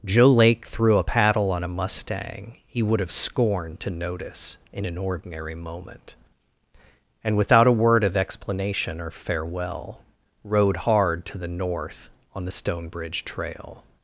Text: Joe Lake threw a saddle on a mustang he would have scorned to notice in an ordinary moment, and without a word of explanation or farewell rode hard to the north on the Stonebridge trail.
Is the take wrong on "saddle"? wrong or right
wrong